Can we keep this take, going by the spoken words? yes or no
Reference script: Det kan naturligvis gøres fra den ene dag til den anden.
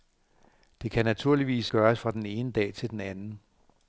yes